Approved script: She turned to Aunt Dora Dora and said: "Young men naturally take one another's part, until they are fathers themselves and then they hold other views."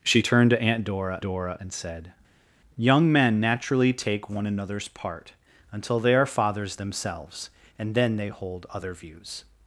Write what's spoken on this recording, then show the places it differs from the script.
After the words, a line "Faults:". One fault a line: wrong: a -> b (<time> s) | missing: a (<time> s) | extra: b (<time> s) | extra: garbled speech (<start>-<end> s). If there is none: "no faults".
She turned to Aunt Dora Dora and said: "Young men naturally take one another's part, until they are fathers themselves and then they hold other views."
Faults:
no faults